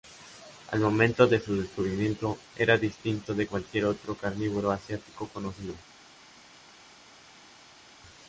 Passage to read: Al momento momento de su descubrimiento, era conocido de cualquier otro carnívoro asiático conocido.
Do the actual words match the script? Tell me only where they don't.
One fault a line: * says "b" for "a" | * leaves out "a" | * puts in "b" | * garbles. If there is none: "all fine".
* leaves out "momento"
* says "distinto" for "conocido"